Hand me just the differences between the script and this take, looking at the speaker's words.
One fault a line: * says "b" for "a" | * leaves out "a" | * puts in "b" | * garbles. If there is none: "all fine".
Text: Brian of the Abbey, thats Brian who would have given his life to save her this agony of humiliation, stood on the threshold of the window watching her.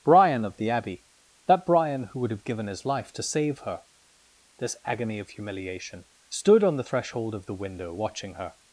* says "that" for "thats"